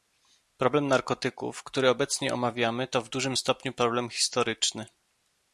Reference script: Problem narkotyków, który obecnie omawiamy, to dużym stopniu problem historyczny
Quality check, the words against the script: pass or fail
fail